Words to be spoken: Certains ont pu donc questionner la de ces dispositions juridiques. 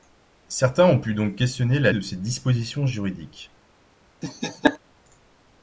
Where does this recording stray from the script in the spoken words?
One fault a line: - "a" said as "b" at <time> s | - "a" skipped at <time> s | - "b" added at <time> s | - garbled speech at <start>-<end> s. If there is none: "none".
none